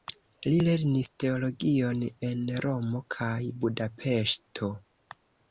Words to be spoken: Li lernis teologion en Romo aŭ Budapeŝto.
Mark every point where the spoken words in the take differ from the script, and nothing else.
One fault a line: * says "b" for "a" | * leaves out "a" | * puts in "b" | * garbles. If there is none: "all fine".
* says "kaj" for "aŭ"